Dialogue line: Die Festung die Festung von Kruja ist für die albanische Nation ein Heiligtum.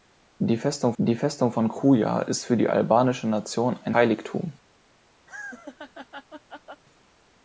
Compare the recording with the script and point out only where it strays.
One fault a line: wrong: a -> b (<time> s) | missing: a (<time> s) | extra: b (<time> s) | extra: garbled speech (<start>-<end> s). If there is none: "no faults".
no faults